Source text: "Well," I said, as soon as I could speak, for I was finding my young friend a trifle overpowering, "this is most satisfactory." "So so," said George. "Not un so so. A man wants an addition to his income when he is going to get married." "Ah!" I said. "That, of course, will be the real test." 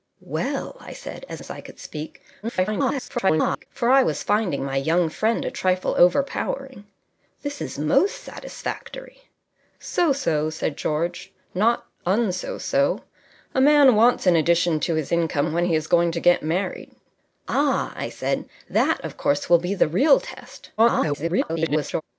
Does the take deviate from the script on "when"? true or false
false